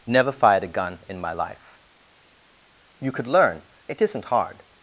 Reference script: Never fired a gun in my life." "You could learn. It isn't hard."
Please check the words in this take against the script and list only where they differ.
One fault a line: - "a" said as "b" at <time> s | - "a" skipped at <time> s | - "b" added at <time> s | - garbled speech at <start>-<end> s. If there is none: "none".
none